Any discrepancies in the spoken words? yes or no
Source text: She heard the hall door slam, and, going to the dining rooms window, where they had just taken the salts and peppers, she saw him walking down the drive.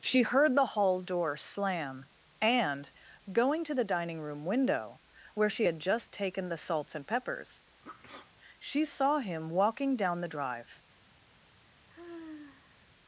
yes